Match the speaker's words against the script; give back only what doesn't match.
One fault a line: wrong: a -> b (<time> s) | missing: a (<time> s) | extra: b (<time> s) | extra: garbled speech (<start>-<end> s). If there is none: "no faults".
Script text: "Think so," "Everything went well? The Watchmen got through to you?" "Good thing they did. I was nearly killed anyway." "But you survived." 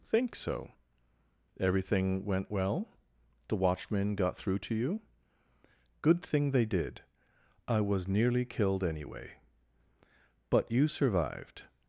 no faults